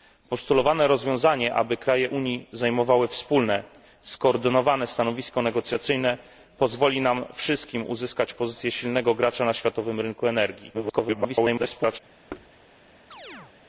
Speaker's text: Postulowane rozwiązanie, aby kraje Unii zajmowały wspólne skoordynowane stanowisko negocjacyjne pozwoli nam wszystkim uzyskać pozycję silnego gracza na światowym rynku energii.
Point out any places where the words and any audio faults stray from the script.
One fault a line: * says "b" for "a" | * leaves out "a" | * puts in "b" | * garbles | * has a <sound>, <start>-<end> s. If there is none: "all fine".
* garbles
* has a thud, 12.3-12.5 s
* has a chirp, 13.1-13.5 s